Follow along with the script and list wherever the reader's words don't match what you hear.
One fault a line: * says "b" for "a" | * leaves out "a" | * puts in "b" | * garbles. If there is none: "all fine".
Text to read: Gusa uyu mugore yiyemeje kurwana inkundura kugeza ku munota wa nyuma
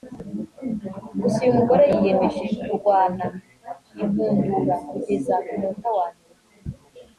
all fine